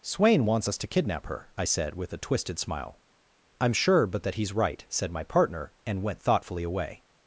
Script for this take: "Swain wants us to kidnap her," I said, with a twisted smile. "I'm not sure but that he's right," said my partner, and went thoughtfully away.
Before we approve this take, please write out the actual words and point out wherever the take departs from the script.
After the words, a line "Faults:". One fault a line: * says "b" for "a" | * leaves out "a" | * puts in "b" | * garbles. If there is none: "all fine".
"Swain wants us to kidnap her," I said, with a twisted smile. "I'm sure but that he's right," said my partner, and went thoughtfully away.
Faults:
* leaves out "not"